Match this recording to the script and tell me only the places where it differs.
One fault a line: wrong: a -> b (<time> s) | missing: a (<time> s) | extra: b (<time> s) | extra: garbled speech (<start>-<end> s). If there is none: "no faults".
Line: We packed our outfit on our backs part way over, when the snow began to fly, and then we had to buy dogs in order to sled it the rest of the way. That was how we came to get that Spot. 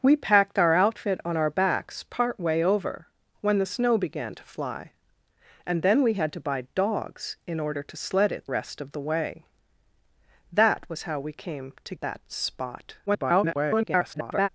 missing: the (8.4 s)
missing: get (11.9 s)
extra: garbled speech (13.1-14.5 s)